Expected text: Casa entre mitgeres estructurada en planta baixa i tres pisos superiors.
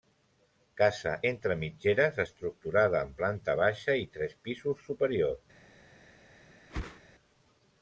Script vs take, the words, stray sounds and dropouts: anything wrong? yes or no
yes